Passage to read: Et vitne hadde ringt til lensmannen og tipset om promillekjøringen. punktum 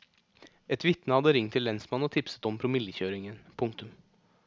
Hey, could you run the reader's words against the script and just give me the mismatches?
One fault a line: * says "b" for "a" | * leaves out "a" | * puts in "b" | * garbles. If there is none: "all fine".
all fine